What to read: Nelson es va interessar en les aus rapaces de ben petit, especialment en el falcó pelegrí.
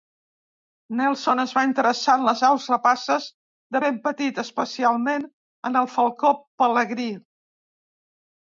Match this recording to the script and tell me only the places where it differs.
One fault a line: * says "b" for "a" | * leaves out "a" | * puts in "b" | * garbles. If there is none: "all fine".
all fine